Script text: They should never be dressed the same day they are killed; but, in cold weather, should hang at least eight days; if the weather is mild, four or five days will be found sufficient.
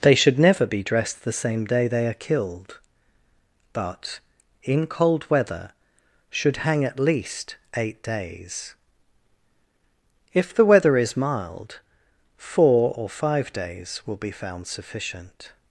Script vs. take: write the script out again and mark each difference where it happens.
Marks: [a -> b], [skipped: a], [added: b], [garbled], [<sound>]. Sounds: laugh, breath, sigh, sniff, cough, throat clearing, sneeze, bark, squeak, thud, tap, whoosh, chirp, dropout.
They should never be dressed the same day they are killed; but, in cold weather, should hang at least eight days; if the weather is mild, four or five days will be found sufficient.